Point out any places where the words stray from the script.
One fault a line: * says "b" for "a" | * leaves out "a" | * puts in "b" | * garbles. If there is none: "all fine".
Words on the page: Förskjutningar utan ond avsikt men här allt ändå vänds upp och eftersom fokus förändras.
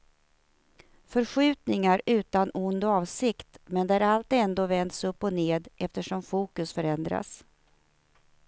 * says "där" for "här"
* puts in "ned"